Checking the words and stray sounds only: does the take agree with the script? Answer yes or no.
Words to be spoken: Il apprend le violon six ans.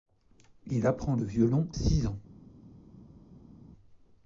yes